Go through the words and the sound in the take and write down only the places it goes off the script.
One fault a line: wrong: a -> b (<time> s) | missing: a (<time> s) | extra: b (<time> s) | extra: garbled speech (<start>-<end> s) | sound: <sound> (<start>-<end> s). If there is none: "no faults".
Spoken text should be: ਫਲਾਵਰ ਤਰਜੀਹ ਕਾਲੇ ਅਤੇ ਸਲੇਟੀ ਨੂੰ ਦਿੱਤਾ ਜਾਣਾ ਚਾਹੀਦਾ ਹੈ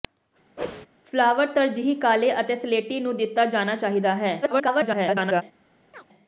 sound: whoosh (0.6-0.9 s)
extra: garbled speech (4.4-5.4 s)
sound: chirp (5.9-6.1 s)